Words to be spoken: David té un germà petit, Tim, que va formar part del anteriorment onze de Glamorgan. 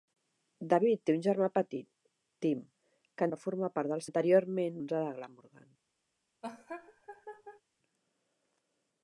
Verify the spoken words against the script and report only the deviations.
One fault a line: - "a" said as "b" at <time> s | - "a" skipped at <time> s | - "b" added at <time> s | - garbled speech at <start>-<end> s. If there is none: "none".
none